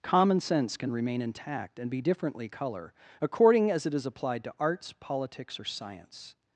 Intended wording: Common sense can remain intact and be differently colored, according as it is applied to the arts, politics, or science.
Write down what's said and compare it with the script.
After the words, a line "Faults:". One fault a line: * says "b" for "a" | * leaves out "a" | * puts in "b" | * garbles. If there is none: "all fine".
Common sense can remain intact and be differently color, according as it is applied to arts, politics, or science.
Faults:
* says "color" for "colored"
* leaves out "the"